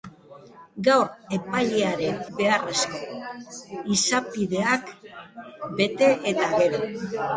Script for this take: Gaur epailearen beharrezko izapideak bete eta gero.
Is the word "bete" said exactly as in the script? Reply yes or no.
yes